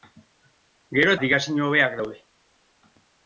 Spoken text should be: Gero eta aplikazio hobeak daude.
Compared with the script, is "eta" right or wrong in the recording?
wrong